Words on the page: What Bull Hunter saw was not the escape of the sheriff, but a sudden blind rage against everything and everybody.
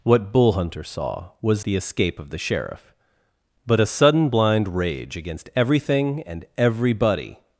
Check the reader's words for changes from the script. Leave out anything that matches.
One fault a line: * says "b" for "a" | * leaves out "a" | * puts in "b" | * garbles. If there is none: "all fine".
* leaves out "not"